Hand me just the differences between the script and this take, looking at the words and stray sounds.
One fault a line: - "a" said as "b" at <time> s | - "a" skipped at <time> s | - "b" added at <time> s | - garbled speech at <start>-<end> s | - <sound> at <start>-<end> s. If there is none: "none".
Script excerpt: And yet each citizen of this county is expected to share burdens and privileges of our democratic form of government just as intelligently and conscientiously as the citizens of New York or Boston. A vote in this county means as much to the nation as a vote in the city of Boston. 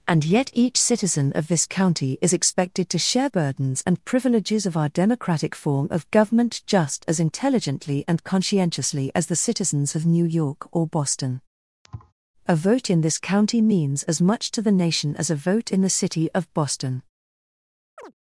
- thud at 11.8-12.1 s
- chirp at 18.0-18.1 s